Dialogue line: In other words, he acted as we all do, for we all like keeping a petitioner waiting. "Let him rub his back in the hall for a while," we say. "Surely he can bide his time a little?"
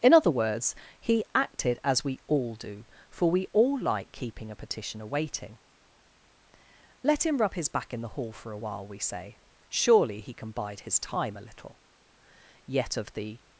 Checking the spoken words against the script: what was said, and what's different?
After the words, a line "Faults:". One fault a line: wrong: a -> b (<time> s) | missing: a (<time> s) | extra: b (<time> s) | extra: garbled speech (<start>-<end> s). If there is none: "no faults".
In other words, he acted as we all do, for we all like keeping a petitioner waiting. "Let him rub his back in the hall for a while," we say. "Surely he can bide his time a little?" Yet of the
Faults:
extra: Yet of the (12.7 s)